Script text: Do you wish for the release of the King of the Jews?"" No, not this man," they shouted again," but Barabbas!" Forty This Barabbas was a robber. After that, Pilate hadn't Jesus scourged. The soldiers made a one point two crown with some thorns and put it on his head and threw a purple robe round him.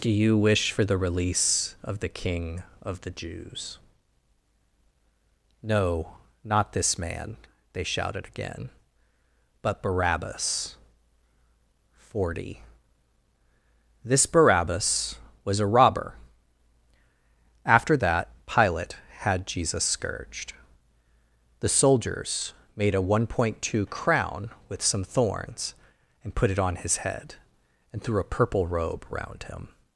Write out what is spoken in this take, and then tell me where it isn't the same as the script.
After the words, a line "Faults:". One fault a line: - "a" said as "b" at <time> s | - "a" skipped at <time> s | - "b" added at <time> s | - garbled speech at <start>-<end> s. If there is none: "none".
Do you wish for the release of the King of the Jews?"" No, not this man," they shouted again," but Barabbas!" Forty This Barabbas was a robber. After that, Pilate had Jesus scourged. The soldiers made a one point two crown with some thorns and put it on his head and threw a purple robe round him.
Faults:
- "hadn't" said as "had" at 19.2 s